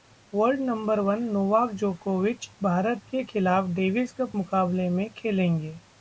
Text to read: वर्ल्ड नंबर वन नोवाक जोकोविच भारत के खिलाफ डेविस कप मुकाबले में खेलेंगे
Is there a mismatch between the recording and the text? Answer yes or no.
no